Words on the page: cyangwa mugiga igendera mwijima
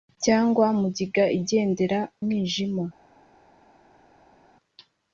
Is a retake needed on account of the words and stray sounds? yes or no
no